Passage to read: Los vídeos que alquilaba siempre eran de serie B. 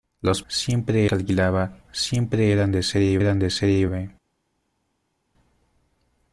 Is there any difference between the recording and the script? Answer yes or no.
yes